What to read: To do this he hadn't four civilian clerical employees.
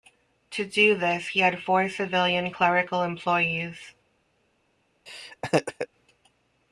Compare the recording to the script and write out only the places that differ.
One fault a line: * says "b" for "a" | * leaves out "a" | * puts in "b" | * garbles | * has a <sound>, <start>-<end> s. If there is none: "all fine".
* says "had" for "hadn't"
* has a laugh, 5.1-5.9 s